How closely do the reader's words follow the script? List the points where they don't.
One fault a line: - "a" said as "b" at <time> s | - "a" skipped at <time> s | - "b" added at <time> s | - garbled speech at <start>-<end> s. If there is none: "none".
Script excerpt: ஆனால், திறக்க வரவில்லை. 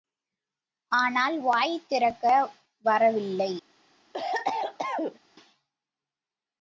- "வாய்" added at 1.4 s